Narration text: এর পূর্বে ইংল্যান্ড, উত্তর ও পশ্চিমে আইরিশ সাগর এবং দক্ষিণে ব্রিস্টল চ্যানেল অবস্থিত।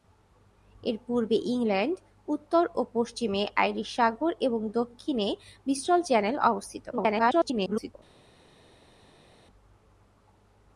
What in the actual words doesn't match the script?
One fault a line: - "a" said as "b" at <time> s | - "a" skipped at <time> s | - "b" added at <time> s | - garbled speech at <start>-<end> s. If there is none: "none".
- garbled speech at 6.9-7.9 s